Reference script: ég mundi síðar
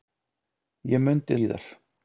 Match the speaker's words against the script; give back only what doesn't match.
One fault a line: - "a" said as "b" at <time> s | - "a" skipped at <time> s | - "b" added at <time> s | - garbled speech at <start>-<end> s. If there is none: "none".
none